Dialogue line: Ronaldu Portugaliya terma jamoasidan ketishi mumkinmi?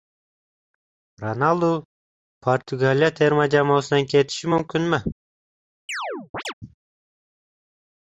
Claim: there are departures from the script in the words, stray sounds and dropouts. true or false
true